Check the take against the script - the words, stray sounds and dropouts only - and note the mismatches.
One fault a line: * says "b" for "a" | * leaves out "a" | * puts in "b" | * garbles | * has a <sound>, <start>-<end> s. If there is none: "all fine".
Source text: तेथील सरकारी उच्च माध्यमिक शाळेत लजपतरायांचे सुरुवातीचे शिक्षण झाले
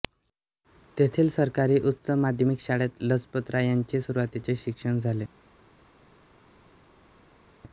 all fine